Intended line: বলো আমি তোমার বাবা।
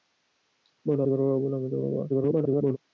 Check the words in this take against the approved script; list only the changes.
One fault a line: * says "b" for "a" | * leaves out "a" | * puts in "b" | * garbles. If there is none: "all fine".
* leaves out "আমি"
* garbles